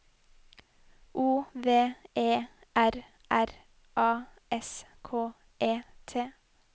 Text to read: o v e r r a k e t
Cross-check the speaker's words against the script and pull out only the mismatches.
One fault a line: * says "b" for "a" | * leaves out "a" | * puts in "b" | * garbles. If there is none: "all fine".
* puts in "s"